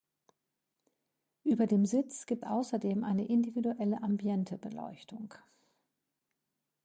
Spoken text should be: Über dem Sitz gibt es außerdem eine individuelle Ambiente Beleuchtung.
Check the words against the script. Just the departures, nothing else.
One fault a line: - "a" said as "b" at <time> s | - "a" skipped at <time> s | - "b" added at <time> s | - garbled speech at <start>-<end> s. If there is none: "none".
- "es" skipped at 2.4 s